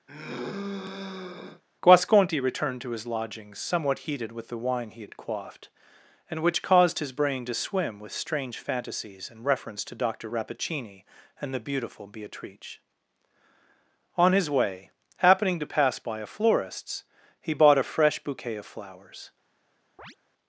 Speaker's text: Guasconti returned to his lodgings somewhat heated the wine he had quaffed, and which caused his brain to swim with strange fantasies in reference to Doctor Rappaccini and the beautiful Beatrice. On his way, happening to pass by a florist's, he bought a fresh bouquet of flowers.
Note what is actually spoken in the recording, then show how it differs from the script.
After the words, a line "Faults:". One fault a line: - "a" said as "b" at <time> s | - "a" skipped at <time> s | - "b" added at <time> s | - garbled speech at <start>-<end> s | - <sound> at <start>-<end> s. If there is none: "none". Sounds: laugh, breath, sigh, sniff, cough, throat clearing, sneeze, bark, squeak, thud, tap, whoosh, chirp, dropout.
Guasconti returned to his lodgings somewhat heated with the wine he had quaffed, and which caused his brain to swim with strange fantasies in reference to Doctor Rappaccini and the beautiful Beatrice. On his way, happening to pass by a florist's, he bought a fresh bouquet of flowers.
Faults:
- sigh at 0.1-1.6 s
- "with" added at 4.3 s
- chirp at 20.0-20.2 s